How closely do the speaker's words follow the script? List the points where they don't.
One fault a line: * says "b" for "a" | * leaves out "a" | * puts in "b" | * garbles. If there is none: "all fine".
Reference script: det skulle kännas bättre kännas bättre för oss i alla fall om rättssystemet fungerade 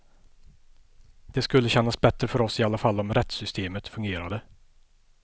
* leaves out "kännas bättre"